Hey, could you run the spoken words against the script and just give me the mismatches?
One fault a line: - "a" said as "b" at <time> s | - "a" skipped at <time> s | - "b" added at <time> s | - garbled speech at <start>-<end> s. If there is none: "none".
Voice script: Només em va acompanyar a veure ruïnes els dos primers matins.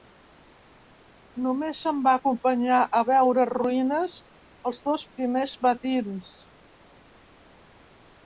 none